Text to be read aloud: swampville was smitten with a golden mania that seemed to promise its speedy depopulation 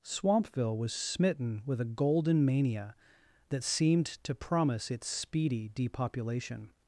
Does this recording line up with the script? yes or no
yes